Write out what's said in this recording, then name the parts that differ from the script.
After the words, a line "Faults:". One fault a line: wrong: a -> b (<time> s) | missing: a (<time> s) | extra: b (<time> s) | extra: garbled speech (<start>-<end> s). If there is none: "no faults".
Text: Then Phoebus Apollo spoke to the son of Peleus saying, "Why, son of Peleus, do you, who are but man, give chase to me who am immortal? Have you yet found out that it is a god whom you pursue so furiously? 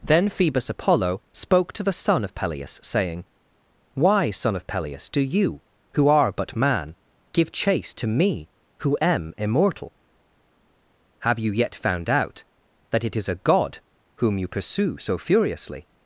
Then Phoebus Apollo spoke to the son of Peleus saying, "Why, son of Peleus, do you, who are but man, give chase to me who am immortal? Have you yet found out that it is a god whom you pursue so furiously?
Faults:
no faults